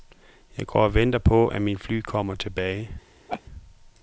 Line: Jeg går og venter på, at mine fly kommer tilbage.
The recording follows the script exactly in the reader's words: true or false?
true